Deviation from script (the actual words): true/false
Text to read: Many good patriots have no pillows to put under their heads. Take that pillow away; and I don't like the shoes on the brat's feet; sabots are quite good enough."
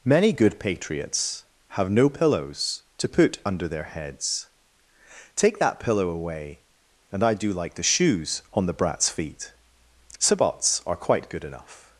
true